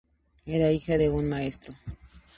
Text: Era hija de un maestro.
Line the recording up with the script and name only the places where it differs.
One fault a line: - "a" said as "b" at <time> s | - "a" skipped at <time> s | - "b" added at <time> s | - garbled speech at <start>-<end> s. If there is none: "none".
none